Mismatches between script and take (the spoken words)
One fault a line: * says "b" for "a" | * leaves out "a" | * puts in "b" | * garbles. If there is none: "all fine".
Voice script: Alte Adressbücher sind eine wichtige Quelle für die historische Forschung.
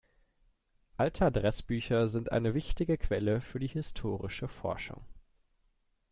all fine